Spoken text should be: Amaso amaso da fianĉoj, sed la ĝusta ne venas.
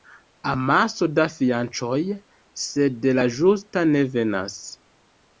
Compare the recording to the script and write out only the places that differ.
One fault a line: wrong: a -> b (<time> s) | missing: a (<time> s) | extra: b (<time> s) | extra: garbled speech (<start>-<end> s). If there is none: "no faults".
missing: amaso (1.1 s)